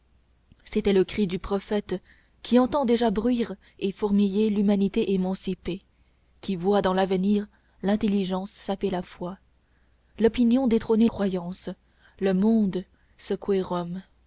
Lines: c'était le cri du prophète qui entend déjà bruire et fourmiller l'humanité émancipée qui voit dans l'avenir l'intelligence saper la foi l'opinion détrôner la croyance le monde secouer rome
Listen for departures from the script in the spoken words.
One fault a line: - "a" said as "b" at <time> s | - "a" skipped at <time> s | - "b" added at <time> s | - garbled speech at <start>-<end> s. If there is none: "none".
- "la" skipped at 11.1 s